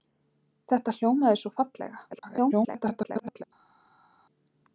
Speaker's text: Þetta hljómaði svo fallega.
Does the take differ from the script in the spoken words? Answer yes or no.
yes